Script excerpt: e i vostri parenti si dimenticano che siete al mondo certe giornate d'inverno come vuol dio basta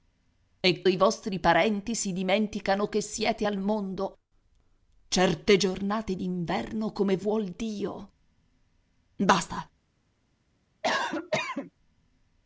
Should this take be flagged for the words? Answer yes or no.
no